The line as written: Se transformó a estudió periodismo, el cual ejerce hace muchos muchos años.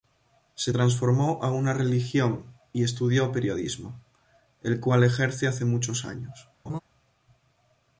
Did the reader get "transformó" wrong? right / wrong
right